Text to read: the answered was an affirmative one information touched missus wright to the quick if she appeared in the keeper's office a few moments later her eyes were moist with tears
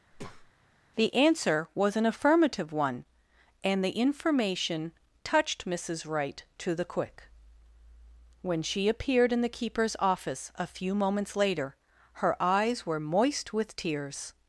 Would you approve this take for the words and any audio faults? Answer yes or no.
no